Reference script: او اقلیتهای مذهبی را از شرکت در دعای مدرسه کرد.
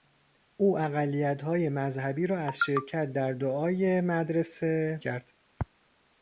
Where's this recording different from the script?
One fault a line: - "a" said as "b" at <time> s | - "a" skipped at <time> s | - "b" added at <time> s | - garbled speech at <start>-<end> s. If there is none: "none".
none